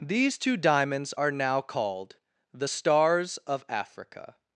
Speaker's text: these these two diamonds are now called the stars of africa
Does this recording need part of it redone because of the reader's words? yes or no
yes